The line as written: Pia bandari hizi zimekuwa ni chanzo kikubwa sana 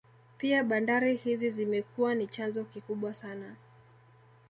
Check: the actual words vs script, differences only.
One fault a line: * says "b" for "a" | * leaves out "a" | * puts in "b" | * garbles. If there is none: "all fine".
all fine